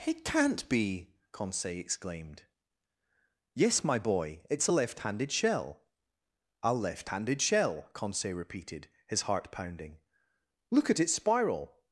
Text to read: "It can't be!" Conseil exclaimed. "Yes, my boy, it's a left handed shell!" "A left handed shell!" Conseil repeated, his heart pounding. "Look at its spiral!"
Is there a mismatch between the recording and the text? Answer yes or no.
no